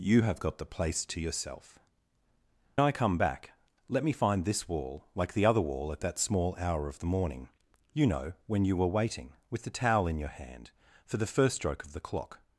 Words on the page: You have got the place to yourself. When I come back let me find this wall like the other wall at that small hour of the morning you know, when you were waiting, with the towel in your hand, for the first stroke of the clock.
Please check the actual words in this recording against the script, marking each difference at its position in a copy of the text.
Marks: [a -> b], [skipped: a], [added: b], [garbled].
You have got the place to yourself. [skipped: When] I come back let me find this wall like the other wall at that small hour of the morning you know, when you were waiting, with the towel in your hand, for the first stroke of the clock.